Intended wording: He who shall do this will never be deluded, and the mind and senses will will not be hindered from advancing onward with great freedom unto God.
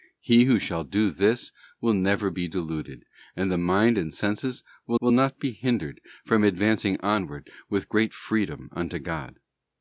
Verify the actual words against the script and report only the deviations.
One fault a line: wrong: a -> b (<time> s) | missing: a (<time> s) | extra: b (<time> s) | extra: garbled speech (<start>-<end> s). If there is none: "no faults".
no faults